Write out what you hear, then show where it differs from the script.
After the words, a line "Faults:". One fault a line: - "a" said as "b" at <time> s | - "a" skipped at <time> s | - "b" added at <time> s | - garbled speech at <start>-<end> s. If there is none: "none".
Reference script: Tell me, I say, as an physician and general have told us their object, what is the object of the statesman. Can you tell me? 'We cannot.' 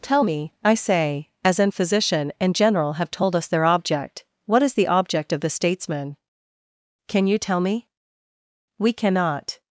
Tell me, I say, as an physician and general have told us their object, what is the object of the statesman. Can you tell me? 'We cannot.'
Faults:
none